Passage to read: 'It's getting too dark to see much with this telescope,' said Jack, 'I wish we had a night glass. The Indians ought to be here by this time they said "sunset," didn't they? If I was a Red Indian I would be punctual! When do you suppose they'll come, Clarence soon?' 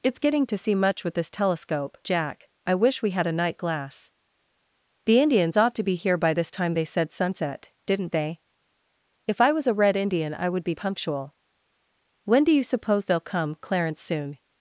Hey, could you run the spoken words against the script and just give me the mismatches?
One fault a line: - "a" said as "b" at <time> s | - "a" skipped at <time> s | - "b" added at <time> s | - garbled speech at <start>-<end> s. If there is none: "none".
- "too dark" skipped at 0.5 s
- "said" skipped at 2.0 s